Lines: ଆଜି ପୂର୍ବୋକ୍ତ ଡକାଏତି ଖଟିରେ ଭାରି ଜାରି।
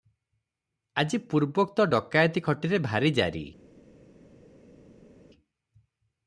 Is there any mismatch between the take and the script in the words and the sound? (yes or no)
no